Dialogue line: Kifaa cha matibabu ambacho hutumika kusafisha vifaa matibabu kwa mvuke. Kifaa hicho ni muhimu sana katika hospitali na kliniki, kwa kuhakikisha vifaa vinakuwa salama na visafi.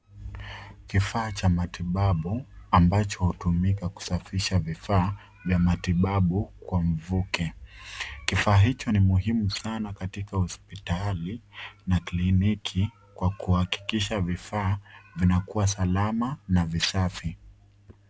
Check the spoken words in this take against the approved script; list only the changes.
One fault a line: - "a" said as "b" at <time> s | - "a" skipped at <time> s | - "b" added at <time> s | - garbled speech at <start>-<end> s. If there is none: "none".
- "vya" added at 5.5 s